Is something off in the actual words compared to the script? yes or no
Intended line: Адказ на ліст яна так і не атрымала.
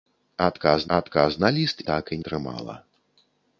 yes